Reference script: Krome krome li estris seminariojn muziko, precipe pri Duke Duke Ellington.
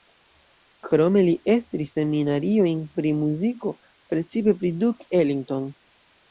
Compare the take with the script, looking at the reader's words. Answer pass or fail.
fail